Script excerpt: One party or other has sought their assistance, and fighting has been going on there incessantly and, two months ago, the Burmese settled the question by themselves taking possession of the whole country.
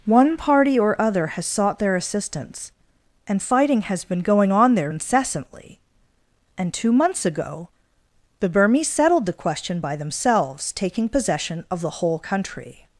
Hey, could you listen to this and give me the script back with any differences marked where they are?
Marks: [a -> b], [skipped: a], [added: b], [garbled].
One party or other has sought their assistance, and fighting has been going on there incessantly and, two months ago, the Burmese settled the question by themselves taking possession of the whole country.